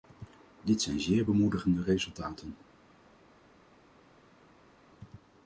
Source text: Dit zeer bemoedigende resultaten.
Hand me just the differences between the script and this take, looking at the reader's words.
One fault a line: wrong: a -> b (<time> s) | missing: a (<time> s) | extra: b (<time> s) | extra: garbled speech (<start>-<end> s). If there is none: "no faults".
extra: zijn (0.8 s)